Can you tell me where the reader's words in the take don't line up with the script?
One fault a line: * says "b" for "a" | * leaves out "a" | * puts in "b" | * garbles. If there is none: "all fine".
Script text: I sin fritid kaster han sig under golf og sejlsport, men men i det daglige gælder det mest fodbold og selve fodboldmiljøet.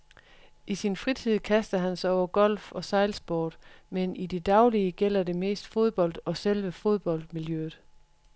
* says "over" for "under"
* leaves out "men"